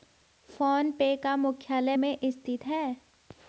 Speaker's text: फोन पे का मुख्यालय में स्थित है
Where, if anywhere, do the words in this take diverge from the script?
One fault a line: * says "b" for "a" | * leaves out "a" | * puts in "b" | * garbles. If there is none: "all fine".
all fine